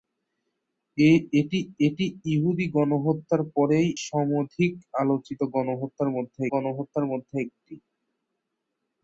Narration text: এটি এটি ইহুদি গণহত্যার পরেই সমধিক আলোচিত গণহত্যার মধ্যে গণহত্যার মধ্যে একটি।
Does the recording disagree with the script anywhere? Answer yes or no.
no